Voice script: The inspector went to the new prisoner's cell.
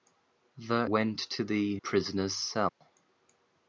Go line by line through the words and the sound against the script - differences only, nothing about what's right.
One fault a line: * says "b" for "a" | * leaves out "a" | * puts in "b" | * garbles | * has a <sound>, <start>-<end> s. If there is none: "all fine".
* leaves out "inspector"
* leaves out "new"
* has a dropout, 2.7-2.8 s